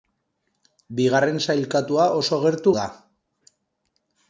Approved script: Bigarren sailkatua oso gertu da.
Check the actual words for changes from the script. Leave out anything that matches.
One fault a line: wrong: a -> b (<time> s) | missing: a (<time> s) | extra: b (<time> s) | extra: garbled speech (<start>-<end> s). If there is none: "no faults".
no faults